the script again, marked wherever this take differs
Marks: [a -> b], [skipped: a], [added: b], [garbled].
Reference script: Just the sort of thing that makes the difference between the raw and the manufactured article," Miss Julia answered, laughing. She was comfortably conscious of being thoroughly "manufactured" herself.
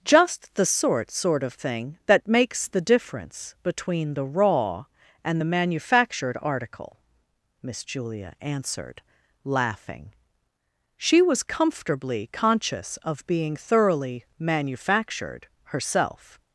Just the sort [added: sort] of thing that makes the difference between the raw and the manufactured article," Miss Julia answered, laughing. She was comfortably conscious of being thoroughly "manufactured" herself.